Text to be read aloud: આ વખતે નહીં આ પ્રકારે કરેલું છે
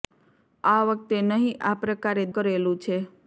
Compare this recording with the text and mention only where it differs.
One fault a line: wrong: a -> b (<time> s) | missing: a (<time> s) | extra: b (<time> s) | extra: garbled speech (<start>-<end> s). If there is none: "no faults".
no faults